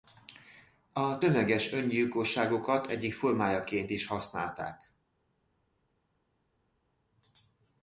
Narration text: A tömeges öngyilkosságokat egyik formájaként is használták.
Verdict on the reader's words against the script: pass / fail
pass